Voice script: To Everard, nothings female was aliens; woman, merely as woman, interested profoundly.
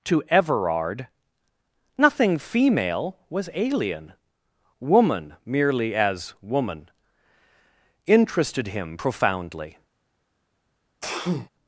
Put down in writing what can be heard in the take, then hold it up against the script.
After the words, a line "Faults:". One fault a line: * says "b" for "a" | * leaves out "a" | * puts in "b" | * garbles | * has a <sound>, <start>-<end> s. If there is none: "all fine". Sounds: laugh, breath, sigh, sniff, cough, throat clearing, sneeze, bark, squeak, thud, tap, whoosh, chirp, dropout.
To Everard, nothing female was alien; woman, merely as woman, interested him profoundly.
Faults:
* says "nothing" for "nothings"
* says "alien" for "aliens"
* puts in "him"
* has a sneeze, 11.0-11.5 s